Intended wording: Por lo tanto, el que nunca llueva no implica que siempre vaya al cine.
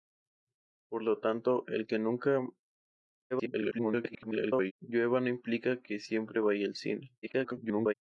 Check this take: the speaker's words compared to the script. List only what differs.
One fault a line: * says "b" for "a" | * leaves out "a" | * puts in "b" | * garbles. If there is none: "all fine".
* garbles
* garbles